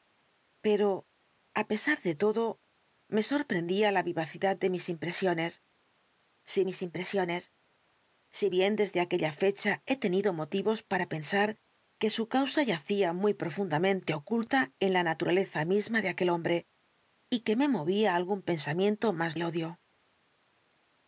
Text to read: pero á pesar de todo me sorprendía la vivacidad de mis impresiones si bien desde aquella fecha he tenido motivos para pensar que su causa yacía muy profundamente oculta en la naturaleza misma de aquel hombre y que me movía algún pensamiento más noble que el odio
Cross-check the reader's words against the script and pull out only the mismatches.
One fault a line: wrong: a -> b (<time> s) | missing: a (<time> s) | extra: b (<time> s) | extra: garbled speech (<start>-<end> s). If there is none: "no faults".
extra: mis impresiones si (6.7 s)
missing: noble que (19.3 s)